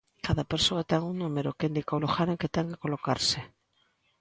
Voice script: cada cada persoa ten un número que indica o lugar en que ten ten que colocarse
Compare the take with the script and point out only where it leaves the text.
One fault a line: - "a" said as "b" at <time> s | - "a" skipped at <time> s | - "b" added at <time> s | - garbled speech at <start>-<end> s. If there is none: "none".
- "cada" skipped at 0.4 s
- "ten" skipped at 2.7 s